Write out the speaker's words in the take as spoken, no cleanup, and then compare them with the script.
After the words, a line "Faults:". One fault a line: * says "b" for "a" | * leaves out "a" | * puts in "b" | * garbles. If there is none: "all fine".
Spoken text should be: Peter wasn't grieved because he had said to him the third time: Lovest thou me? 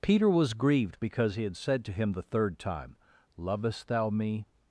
Peter was grieved because he had said to him the third time: Lovest thou me?
Faults:
* says "was" for "wasn't"